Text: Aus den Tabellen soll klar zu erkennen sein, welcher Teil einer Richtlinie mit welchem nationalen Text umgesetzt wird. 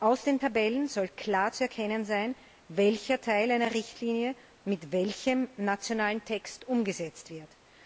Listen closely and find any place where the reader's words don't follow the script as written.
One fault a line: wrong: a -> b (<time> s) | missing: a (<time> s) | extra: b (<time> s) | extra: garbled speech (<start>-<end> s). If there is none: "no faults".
no faults